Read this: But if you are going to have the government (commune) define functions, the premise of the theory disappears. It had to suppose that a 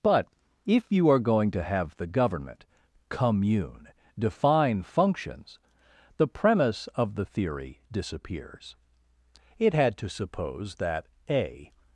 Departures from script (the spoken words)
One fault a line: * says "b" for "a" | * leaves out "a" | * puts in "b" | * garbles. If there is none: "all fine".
all fine